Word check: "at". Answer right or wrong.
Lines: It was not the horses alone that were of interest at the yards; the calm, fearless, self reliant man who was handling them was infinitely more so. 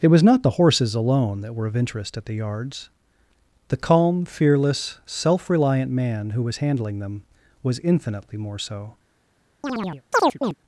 right